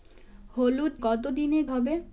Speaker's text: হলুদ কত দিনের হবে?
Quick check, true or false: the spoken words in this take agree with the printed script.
true